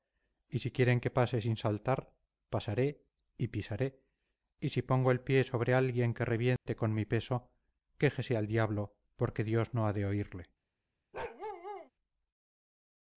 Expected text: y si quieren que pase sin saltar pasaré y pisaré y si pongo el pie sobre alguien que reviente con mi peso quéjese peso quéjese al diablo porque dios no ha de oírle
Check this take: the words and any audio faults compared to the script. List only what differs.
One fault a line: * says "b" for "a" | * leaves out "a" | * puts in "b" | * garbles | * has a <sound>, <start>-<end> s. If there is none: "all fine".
* has a dropout, 6.6-6.7 s
* leaves out "peso quéjese"
* has a bark, 11.1-11.9 s